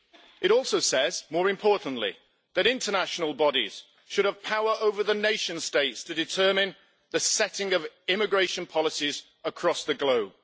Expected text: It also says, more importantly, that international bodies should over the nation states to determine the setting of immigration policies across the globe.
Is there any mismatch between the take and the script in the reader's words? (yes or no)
yes